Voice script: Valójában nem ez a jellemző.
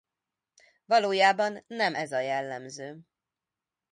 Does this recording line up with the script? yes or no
yes